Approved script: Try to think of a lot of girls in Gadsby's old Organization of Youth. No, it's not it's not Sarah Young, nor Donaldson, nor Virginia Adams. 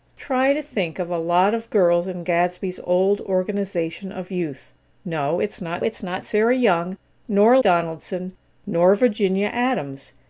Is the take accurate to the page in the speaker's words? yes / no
yes